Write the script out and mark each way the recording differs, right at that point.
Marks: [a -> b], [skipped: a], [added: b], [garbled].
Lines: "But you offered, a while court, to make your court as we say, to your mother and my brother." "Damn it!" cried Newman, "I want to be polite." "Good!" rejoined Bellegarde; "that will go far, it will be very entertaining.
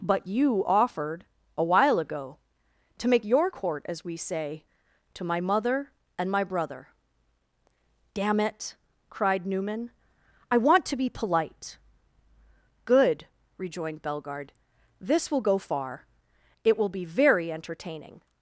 "But you offered, a while [court, -> ago] to make your court as we say, to [your -> my] mother and my brother." "Damn it!" cried Newman, "I want to be polite." "Good!" rejoined Bellegarde; ["that -> this] will go far, it will be very entertaining.